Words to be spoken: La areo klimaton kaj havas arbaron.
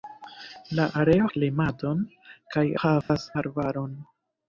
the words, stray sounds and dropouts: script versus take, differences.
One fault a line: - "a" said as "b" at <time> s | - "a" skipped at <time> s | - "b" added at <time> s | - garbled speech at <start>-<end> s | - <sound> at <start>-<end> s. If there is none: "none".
- dropout at 3.0-3.1 s